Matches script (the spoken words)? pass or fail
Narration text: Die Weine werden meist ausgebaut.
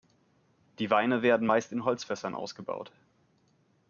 fail